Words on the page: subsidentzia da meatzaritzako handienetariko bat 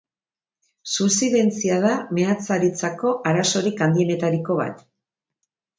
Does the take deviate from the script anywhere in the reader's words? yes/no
yes